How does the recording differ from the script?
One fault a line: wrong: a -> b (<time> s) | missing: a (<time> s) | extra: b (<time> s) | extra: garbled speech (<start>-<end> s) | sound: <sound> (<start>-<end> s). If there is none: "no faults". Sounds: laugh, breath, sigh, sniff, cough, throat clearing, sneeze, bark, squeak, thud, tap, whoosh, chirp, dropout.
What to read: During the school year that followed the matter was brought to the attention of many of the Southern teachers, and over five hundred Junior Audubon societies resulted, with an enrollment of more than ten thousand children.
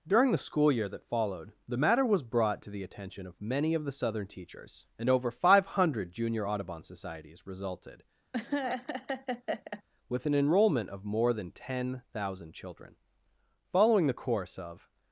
sound: laugh (8.3-9.8 s)
extra: Following the course of (13.7 s)